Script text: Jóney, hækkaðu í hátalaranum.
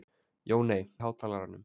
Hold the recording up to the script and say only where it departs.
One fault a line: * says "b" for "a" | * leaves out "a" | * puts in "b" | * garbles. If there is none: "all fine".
* leaves out "hækkaðu"